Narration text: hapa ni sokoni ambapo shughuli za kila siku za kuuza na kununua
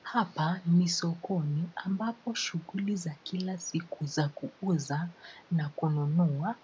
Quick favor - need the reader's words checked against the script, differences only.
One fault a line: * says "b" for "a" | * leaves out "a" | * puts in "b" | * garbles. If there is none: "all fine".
all fine